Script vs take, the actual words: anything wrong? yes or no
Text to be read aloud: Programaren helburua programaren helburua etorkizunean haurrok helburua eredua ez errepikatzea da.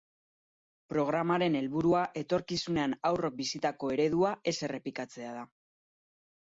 yes